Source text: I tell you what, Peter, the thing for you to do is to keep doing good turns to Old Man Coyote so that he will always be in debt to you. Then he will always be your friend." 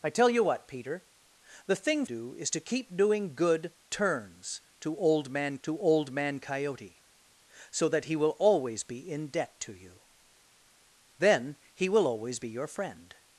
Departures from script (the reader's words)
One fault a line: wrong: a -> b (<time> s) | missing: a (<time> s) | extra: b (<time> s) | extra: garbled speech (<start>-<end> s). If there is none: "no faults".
missing: for you to (2.0 s)
extra: to Old Man (5.6 s)